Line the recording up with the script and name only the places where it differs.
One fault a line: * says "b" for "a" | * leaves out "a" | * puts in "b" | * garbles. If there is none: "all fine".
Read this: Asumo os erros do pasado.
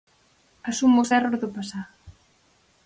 all fine